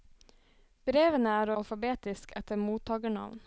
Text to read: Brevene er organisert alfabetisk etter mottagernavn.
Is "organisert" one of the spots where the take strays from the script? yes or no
yes